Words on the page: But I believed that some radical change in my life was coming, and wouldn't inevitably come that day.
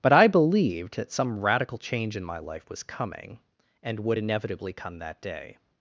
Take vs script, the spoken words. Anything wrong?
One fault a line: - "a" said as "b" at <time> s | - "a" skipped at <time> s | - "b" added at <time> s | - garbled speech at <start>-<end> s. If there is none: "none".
- "wouldn't" said as "would" at 4.0 s